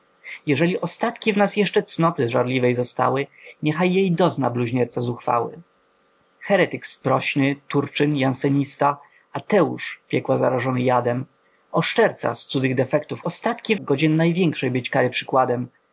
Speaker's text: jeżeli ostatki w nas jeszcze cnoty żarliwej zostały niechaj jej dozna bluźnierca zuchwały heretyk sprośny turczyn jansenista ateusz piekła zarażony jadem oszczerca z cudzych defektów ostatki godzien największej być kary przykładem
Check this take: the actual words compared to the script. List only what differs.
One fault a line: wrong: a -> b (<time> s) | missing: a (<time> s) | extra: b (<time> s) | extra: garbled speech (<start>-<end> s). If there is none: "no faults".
no faults